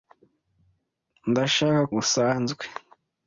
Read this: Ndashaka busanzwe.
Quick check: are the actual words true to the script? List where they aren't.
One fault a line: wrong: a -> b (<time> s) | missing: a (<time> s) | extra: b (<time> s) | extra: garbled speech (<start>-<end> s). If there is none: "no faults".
no faults